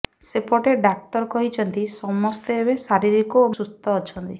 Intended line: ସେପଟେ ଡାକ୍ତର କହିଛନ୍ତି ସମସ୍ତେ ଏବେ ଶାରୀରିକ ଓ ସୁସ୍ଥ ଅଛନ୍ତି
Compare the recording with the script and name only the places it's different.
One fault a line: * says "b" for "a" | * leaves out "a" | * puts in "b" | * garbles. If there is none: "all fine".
all fine